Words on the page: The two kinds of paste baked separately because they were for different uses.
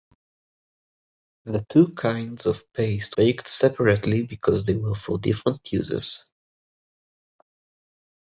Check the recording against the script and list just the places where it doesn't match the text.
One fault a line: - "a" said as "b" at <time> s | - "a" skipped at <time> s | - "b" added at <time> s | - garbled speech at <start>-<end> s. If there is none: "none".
none